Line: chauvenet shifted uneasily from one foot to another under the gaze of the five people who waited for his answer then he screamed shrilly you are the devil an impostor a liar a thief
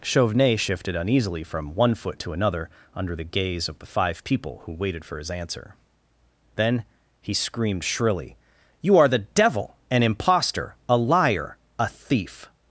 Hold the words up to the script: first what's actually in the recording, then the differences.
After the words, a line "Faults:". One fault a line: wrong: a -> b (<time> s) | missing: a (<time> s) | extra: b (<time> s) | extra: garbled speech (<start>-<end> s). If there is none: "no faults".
chauvenet shifted uneasily from one foot to another under the gaze of the five people who waited for his answer then he screamed shrilly you are the devil an impostor a liar a thief
Faults:
no faults